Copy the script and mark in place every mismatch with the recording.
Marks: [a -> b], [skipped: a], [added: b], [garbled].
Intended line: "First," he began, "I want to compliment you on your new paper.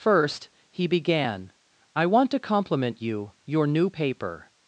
"First," he began, "I want to compliment you [skipped: on] your new paper.